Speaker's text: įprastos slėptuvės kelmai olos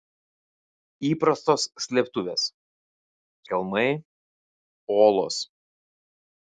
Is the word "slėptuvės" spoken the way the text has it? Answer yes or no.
yes